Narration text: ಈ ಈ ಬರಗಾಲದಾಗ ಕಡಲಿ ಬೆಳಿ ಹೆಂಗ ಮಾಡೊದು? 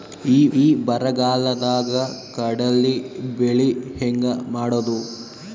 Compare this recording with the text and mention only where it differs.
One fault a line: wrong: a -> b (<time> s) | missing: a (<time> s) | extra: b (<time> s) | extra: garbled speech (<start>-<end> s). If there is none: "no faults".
no faults